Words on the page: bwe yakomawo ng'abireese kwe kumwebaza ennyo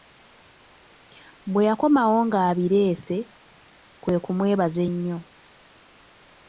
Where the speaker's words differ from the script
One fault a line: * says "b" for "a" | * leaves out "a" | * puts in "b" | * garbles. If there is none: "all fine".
all fine